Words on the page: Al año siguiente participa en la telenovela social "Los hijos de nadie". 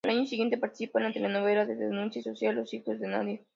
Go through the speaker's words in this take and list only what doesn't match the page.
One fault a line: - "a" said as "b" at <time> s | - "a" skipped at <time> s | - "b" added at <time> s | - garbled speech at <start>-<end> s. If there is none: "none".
- "de denuncia" added at 1.6 s